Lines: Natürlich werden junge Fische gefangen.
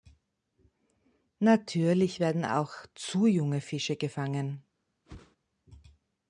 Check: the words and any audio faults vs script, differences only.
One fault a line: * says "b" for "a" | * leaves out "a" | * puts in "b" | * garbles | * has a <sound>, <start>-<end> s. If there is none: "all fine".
* puts in "auch zu"
* has a whoosh, 5.0-5.4 s